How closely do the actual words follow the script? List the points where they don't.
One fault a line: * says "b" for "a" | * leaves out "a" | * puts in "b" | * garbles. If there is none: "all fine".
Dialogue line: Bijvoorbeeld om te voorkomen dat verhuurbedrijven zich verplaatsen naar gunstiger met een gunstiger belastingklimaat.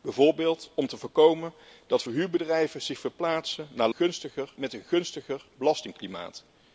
all fine